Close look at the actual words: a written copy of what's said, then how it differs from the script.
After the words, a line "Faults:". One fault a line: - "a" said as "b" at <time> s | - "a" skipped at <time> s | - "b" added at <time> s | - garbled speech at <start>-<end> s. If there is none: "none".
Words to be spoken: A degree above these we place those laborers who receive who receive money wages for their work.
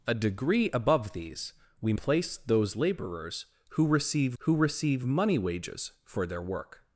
A degree above these we place those laborers who receive who receive money wages for their work.
Faults:
none